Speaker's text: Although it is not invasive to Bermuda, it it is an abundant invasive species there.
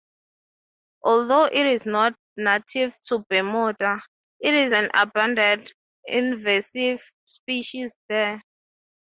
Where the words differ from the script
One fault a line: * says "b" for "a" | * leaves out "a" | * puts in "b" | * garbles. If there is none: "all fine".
* says "native" for "invasive"
* leaves out "it"